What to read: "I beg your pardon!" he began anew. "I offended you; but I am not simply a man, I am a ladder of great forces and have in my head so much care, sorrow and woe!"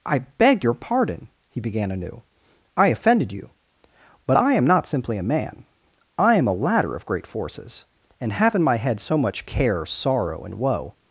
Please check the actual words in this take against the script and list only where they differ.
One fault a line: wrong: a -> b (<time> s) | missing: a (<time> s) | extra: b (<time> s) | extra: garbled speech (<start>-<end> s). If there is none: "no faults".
no faults